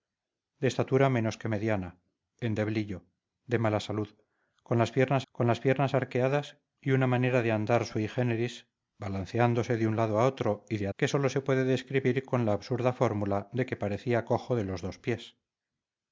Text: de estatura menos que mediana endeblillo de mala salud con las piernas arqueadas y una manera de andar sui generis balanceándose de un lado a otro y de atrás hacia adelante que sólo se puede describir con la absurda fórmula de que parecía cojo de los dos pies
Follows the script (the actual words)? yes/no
no